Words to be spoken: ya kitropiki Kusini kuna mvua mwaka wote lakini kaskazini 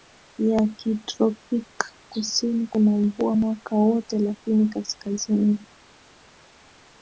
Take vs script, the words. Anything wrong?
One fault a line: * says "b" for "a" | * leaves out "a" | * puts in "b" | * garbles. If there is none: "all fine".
all fine